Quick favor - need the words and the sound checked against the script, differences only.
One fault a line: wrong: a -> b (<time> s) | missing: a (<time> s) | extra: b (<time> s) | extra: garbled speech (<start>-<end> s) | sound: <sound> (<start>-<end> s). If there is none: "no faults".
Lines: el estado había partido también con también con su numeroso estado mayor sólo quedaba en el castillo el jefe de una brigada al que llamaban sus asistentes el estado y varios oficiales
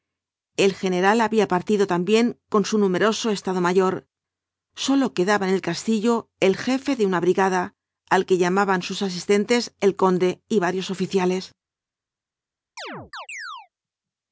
wrong: estado -> general (0.7 s)
missing: también con (2.6 s)
wrong: estado -> conde (9.9 s)
sound: chirp (12.8-13.7 s)